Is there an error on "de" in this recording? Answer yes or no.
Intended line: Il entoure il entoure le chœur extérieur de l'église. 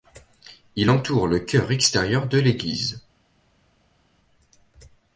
no